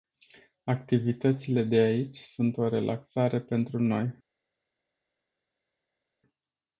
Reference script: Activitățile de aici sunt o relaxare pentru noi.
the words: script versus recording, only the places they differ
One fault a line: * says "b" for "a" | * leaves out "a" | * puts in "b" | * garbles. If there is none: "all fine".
all fine